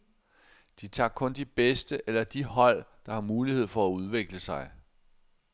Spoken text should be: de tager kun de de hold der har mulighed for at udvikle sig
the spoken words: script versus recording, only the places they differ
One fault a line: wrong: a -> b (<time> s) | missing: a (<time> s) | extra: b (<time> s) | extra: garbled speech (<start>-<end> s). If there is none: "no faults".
extra: bedste eller (1.4 s)